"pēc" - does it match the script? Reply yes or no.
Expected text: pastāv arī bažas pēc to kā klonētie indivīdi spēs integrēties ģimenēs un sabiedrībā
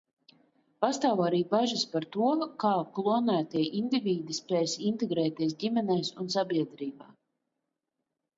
no